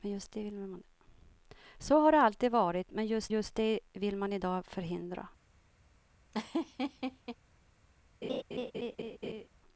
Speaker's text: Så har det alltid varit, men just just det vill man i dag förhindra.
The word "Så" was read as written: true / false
true